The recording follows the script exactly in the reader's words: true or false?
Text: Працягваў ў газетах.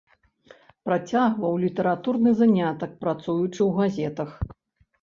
false